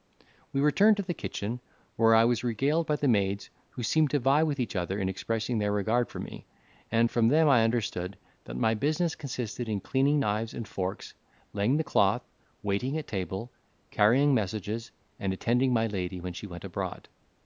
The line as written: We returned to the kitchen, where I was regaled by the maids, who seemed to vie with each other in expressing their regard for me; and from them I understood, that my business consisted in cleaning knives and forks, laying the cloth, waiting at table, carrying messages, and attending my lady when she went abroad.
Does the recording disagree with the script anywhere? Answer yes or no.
no